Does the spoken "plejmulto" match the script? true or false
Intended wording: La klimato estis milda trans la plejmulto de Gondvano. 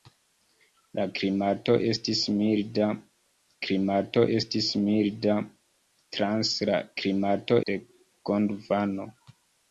false